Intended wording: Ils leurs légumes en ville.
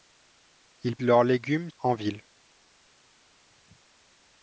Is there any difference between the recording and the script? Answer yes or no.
no